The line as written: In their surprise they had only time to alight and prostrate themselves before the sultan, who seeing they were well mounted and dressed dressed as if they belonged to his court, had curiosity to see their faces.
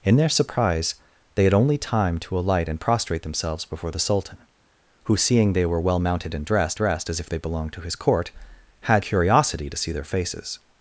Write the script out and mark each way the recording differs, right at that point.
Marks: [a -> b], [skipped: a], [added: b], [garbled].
In their surprise they had only time to alight and prostrate themselves before the sultan, who seeing they were well mounted and dressed dressed as if they belonged to his court, had curiosity to see their faces.